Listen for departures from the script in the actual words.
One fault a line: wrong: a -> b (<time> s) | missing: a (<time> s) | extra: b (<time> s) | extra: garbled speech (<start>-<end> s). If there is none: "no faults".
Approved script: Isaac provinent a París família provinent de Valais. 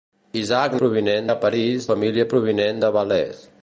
no faults